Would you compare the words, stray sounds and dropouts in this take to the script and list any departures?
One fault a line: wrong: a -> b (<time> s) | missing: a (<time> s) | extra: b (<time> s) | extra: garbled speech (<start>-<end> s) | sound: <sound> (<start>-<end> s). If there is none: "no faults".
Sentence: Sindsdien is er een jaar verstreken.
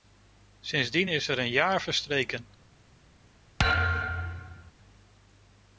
sound: thud (3.6-4.7 s)